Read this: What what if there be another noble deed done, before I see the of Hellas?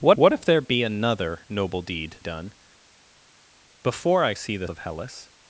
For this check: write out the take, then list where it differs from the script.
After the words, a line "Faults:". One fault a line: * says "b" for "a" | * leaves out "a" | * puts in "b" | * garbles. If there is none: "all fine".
What what if there be another noble deed done, before I see the of Hellas?
Faults:
all fine